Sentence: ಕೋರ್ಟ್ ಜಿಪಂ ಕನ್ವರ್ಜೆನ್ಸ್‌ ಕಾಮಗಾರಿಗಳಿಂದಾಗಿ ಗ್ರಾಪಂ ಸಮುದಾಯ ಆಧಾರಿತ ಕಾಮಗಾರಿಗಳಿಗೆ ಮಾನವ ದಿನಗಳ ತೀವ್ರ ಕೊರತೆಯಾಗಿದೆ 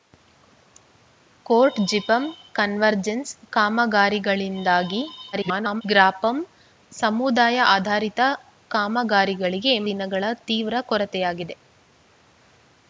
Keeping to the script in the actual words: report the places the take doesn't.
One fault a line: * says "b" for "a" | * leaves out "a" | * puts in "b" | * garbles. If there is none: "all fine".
* garbles
* leaves out "ಮಾನವ"